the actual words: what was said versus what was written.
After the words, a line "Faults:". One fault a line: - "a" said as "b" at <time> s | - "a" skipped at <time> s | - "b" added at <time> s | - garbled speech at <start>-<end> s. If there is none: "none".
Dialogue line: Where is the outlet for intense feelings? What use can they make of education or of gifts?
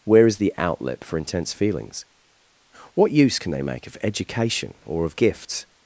Where is the outlet for intense feelings? What use can they make of education or of gifts?
Faults:
none